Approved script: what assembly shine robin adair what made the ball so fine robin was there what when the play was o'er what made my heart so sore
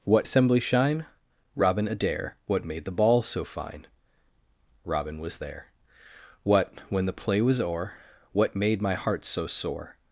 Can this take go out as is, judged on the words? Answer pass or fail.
pass